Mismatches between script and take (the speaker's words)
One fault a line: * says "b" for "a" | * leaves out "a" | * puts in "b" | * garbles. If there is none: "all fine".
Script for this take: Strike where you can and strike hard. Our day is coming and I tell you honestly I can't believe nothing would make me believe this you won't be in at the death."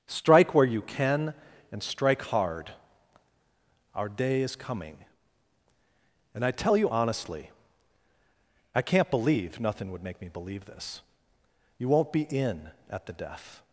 all fine